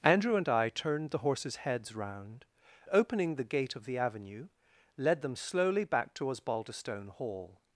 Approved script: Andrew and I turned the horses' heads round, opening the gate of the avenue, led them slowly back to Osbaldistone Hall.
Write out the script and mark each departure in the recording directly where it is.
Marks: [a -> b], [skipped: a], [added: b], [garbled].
Andrew and I turned the horses' heads round, opening the gate of the avenue, led them slowly back to Osbaldistone Hall.